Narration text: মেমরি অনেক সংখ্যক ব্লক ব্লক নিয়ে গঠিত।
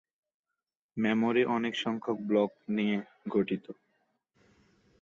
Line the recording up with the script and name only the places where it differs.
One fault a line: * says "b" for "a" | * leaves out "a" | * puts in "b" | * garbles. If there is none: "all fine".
* leaves out "ব্লক"